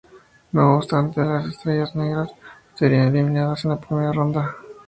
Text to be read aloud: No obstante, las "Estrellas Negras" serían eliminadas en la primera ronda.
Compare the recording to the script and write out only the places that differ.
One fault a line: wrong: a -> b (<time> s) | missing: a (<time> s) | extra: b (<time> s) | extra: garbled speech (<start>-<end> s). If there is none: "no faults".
no faults